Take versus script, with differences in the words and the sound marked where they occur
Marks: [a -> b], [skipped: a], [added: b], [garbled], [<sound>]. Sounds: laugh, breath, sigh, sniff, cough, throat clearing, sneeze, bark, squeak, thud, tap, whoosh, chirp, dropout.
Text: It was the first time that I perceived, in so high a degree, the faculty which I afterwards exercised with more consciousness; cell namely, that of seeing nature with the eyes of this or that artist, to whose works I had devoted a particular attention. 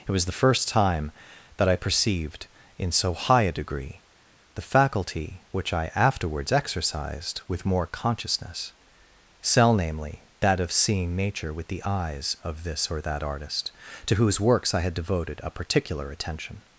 It was the first time that I perceived, in so high a degree, the faculty which I afterwards exercised with more consciousness; cell namely, that of seeing nature with the eyes of this or that artist, to whose works I had devoted a particular attention.